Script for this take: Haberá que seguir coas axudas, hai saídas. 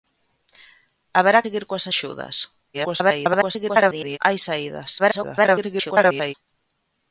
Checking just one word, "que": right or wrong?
wrong